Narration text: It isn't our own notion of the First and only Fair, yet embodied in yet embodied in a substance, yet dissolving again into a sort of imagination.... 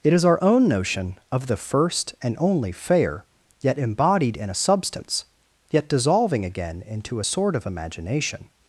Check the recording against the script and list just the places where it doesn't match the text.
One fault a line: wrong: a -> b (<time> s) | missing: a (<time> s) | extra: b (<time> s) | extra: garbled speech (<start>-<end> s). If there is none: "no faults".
wrong: isn't -> is (0.1 s)
missing: yet embodied in (4.5 s)